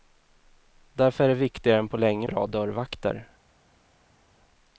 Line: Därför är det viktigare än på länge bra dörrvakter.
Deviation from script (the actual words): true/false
false